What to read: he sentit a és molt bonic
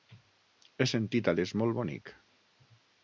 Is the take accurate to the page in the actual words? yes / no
yes